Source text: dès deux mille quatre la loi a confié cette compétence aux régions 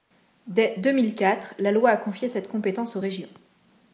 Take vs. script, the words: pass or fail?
pass